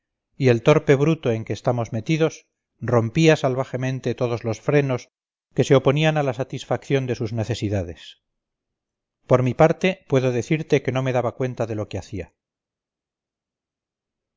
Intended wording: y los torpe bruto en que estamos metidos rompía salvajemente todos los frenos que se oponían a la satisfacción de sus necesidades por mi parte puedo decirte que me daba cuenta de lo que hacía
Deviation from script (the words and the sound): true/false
true